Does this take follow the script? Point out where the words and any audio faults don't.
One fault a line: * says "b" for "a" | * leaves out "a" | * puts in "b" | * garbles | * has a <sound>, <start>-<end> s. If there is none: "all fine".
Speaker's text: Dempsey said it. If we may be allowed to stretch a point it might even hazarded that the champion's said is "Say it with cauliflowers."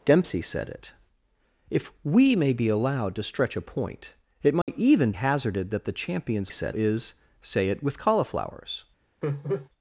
* has a dropout, 4.6-4.7 s
* has a laugh, 9.2-9.7 s